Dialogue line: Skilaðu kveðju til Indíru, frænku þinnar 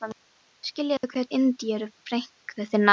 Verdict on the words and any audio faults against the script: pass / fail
fail